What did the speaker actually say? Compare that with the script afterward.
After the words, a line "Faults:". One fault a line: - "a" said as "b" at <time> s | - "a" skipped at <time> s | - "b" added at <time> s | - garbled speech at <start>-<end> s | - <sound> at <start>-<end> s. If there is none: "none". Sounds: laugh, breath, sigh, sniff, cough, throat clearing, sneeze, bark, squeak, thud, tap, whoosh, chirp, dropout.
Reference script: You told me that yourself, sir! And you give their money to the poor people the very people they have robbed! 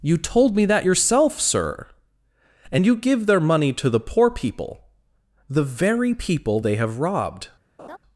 You told me that yourself, sir! And you give their money to the poor people the very people they have robbed!
Faults:
- laugh at 7.8-8.0 s